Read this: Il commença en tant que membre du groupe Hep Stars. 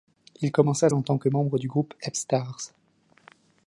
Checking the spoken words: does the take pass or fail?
pass